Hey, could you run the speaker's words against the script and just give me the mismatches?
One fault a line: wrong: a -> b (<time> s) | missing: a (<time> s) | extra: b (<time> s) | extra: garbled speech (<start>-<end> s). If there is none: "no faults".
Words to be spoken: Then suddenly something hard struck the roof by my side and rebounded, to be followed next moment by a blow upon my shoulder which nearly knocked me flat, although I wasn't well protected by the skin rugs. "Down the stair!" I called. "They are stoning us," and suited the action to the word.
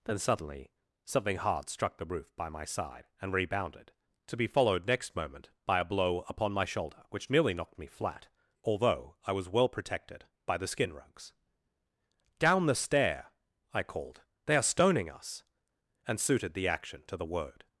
wrong: wasn't -> was (9.3 s)